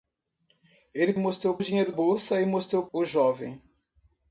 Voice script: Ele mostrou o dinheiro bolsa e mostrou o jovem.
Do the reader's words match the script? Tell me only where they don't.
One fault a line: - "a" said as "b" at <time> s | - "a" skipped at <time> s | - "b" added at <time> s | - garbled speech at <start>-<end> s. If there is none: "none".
none